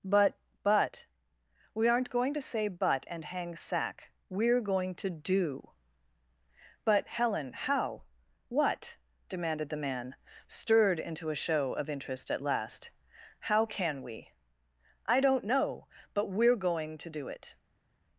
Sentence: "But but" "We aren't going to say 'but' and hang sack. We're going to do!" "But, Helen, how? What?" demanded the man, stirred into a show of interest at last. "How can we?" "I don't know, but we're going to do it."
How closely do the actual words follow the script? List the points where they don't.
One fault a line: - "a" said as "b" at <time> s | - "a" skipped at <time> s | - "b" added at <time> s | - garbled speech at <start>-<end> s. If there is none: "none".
none